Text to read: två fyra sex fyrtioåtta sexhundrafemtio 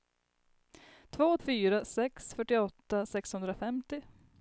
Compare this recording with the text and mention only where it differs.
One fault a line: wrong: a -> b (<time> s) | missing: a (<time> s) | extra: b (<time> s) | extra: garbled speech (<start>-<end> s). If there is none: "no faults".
no faults